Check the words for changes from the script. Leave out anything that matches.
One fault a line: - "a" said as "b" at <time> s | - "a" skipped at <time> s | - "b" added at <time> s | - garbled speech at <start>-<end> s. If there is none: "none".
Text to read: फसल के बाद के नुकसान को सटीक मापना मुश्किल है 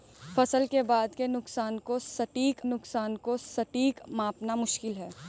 - "नुकसान को सटीक" added at 2.6 s